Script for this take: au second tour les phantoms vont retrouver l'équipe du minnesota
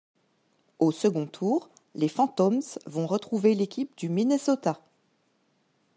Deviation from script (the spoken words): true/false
false